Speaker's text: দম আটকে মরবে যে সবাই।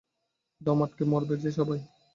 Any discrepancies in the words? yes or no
no